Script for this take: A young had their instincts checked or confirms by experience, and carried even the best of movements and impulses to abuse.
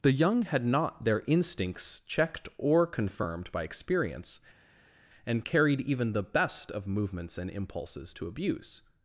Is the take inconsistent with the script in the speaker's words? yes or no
yes